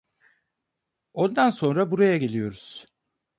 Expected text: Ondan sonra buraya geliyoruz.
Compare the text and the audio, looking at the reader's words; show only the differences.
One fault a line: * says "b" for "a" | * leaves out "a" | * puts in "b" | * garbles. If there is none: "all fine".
all fine